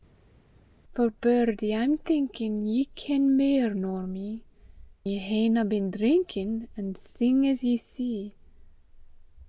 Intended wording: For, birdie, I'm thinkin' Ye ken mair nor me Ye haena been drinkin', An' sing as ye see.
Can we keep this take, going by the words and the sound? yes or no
yes